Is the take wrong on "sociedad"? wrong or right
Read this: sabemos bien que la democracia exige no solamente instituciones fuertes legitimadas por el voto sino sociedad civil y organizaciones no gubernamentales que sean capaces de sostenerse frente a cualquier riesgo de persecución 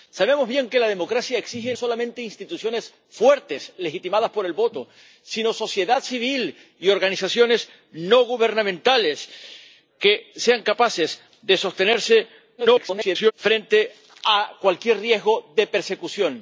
right